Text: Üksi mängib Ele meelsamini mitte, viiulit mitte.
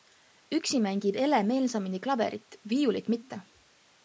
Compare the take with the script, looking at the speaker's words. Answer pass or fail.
fail